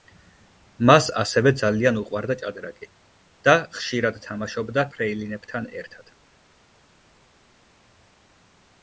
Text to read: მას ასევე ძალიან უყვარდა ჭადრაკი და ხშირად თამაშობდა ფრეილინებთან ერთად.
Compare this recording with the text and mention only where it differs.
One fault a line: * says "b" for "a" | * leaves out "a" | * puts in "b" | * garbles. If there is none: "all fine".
all fine